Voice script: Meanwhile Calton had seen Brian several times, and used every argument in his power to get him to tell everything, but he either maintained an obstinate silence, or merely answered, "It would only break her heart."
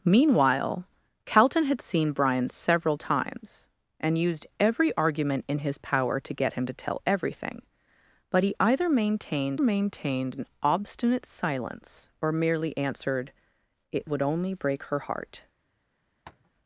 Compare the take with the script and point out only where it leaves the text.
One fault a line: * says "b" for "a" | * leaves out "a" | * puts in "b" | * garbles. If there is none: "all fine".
* puts in "maintained"